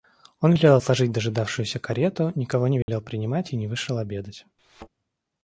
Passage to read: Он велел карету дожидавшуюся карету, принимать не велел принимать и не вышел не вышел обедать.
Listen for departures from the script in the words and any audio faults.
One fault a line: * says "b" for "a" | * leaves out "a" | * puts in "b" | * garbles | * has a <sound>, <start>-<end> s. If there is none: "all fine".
* says "отложить" for "карету"
* says "никого" for "принимать"
* has a dropout, 2.8-2.9 s
* leaves out "не вышел"
* has a thud, 4.6-4.9 s